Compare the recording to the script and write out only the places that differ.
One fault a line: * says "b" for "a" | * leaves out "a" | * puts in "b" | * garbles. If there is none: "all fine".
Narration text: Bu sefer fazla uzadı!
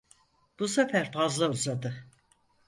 all fine